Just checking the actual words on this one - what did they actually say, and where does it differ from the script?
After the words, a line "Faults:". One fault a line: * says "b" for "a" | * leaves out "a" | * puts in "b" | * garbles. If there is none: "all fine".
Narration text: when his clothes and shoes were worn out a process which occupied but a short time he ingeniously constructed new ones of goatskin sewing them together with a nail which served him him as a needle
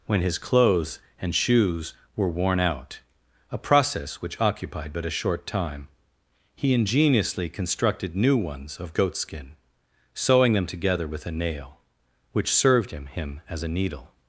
when his clothes and shoes were worn out a process which occupied but a short time he ingeniously constructed new ones of goatskin sewing them together with a nail which served him him as a needle
Faults:
all fine